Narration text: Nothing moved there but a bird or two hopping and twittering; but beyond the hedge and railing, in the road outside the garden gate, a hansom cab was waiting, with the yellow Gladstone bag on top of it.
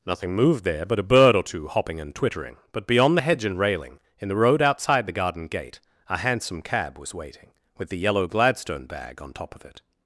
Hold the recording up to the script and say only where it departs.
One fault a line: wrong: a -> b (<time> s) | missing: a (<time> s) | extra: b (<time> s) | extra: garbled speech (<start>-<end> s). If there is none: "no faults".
no faults